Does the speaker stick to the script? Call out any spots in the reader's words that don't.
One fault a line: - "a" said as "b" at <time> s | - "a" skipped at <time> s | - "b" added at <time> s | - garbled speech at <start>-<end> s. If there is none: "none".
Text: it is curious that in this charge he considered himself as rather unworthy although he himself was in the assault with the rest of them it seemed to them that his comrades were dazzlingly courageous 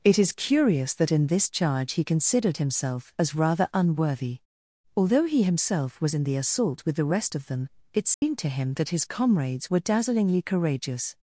- "them" said as "him" at 8.5 s